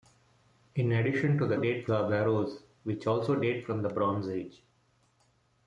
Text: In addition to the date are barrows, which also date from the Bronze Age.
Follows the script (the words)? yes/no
yes